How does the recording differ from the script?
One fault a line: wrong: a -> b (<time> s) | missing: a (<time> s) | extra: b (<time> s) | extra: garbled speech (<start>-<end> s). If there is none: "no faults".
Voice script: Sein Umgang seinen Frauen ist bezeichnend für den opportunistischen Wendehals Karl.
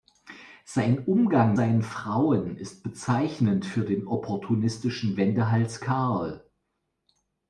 no faults